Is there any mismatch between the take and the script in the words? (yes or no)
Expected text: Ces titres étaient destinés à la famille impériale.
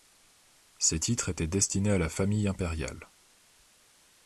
no